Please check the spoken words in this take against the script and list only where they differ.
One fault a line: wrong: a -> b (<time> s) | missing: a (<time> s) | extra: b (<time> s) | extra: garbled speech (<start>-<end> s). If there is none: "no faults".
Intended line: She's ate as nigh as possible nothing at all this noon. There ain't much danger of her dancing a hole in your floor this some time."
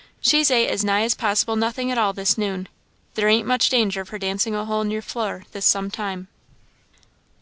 no faults